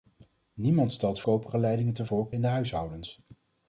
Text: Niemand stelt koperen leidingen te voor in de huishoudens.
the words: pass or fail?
pass